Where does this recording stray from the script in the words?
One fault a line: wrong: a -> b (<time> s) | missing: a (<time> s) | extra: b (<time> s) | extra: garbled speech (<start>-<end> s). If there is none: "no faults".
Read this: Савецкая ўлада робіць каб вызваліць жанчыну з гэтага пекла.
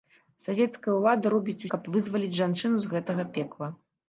no faults